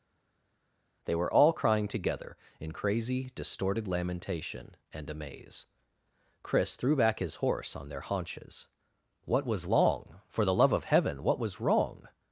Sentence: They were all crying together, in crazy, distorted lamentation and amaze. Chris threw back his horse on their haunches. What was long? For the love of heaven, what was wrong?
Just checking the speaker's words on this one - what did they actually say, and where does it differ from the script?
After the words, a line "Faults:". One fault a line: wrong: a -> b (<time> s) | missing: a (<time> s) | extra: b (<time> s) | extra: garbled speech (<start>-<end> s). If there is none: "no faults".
They were all crying together, in crazy, distorted lamentation and amaze. Chris threw back his horse on their haunches. What was long? For the love of heaven, what was wrong?
Faults:
no faults